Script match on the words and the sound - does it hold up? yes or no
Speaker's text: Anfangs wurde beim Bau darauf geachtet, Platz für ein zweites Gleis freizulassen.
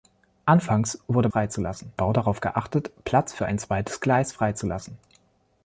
no